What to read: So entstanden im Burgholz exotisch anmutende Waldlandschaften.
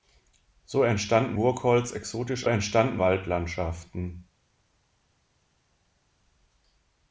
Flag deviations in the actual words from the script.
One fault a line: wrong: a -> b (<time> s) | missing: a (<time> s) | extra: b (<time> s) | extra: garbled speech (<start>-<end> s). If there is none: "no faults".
missing: im (1.4 s)
wrong: anmutende -> entstanden (2.4 s)